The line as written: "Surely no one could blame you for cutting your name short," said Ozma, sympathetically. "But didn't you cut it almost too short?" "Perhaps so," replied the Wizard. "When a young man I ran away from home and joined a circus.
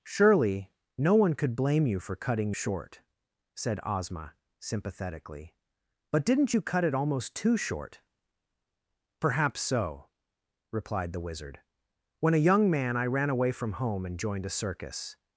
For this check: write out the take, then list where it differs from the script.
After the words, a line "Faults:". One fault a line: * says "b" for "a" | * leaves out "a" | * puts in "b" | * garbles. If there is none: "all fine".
"Surely no one could blame you for cutting short," said Ozma, sympathetically. "But didn't you cut it almost too short?" "Perhaps so," replied the Wizard. "When a young man I ran away from home and joined a circus.
Faults:
* leaves out "your name"